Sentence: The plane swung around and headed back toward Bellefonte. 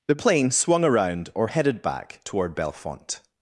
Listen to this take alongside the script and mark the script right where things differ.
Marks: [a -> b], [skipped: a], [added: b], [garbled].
The plane swung around [and -> or] headed back toward Bellefonte.